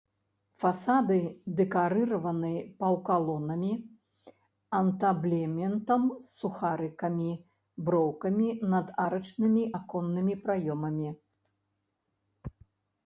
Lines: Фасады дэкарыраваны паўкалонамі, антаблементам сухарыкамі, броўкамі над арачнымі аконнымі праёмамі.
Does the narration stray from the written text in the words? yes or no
yes